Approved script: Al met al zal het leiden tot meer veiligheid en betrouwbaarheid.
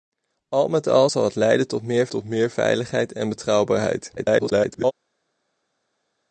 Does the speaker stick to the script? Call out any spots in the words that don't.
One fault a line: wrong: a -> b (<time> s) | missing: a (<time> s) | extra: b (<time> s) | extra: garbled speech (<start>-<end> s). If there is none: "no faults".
extra: tot meer (2.1 s)
extra: garbled speech (4.2-4.9 s)